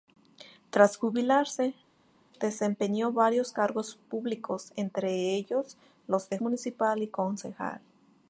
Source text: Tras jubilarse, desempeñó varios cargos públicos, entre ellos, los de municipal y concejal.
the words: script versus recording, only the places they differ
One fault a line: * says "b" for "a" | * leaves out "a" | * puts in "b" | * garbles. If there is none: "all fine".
all fine